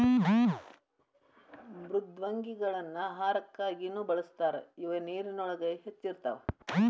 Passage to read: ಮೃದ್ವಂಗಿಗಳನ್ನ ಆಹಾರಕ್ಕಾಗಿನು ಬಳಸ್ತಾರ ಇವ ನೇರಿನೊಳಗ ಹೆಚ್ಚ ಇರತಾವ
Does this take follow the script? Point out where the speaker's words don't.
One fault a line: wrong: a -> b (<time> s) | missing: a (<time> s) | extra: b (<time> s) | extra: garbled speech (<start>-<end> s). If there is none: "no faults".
no faults